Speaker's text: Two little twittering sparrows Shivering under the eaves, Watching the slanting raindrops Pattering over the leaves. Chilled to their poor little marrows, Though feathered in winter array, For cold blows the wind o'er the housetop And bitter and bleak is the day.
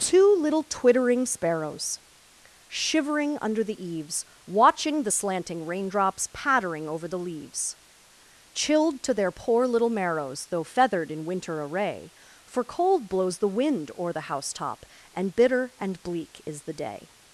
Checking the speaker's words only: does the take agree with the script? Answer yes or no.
yes